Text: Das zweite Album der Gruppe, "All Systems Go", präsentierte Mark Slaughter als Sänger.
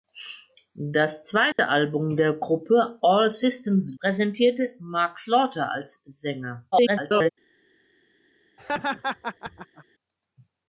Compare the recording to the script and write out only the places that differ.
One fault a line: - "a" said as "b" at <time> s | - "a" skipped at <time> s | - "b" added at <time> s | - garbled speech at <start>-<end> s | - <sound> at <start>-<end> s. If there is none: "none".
- dropout at 1.5-1.6 s
- "Go" skipped at 4.0 s
- garbled speech at 6.7-7.3 s
- laugh at 8.6-9.8 s